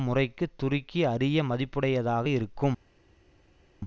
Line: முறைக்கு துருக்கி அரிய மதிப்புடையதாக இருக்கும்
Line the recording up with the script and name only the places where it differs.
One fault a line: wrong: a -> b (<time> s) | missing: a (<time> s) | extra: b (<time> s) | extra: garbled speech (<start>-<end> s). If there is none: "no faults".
no faults